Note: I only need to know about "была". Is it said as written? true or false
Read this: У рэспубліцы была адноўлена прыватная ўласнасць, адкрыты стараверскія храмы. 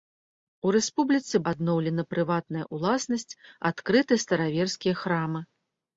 false